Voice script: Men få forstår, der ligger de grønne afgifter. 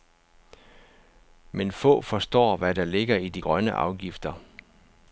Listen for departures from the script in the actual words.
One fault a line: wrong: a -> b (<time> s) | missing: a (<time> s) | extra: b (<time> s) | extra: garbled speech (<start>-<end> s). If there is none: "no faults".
extra: hvad (2.6 s)
extra: i (3.2 s)